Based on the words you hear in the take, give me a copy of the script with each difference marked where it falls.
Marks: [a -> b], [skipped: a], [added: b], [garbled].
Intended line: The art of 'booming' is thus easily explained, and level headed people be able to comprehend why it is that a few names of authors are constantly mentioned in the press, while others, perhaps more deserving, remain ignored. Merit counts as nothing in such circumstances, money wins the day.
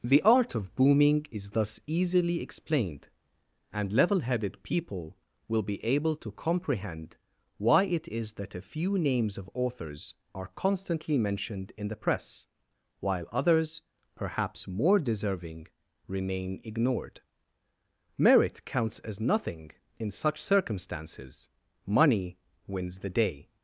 The art of 'booming' is thus easily explained, and level headed people [added: will] be able to comprehend why it is that a few names of authors are constantly mentioned in the press, while others, perhaps more deserving, remain ignored. Merit counts as nothing in such circumstances, money wins the day.